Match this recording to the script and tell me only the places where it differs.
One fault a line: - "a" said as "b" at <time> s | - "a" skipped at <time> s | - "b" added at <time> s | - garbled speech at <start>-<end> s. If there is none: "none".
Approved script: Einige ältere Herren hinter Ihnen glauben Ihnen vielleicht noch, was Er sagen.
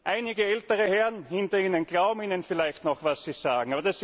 - "Er" said as "Sie" at 3.2 s